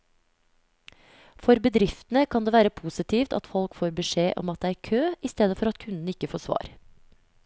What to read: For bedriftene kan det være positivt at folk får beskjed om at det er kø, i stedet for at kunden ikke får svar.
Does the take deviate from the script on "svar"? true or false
false